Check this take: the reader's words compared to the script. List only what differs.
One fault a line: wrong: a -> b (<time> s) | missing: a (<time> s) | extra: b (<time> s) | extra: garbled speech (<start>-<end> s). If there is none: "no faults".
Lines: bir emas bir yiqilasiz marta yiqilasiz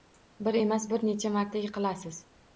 wrong: yiqilasiz -> necha (1.1 s)